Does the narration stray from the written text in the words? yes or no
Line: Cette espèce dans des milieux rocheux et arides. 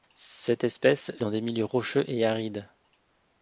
no